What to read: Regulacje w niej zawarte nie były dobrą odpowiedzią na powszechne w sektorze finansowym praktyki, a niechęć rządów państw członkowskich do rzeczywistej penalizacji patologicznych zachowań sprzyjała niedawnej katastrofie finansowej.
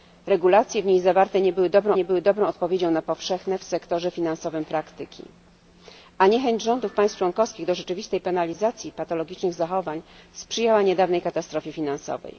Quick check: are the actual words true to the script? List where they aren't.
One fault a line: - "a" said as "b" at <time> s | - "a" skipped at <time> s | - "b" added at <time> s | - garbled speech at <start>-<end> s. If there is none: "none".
- "nie były dobrą" added at 1.9 s